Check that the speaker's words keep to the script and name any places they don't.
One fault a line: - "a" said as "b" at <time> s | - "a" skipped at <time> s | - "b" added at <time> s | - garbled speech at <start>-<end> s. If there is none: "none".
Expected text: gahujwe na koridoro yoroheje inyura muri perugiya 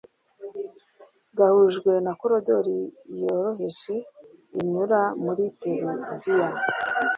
none